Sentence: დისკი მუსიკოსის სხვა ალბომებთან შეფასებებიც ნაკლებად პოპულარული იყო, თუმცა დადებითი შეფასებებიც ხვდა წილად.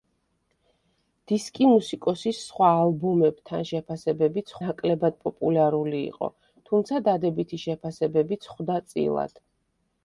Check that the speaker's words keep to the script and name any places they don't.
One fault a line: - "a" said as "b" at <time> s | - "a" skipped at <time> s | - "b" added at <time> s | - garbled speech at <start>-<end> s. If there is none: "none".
none